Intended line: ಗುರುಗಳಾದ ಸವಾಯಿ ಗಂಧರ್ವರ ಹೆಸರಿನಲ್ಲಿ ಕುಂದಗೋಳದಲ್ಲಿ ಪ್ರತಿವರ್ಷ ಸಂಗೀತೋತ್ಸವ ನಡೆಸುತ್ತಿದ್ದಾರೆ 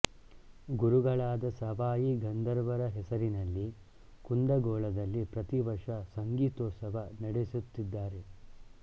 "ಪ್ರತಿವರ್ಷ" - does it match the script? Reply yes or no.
yes